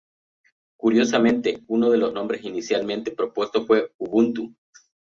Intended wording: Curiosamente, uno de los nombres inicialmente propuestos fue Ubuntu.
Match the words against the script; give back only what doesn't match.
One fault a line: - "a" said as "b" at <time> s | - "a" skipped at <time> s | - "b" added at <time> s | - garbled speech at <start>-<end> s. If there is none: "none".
none